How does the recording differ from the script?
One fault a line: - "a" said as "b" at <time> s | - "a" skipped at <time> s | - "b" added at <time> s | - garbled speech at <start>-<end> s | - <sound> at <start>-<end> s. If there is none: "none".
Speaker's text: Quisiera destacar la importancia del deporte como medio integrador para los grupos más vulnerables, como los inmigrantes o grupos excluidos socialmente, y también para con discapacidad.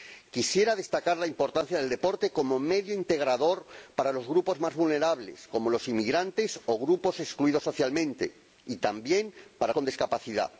none